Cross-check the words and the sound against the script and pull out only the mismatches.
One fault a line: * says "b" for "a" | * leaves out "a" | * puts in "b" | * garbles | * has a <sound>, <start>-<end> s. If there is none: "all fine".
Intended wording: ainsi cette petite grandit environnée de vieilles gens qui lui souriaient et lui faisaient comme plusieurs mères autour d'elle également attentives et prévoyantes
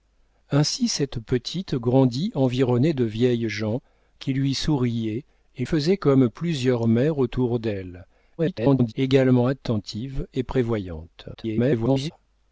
* leaves out "lui"
* garbles
* garbles